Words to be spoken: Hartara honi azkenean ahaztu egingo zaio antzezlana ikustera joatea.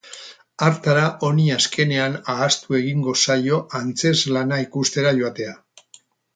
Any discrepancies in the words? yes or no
no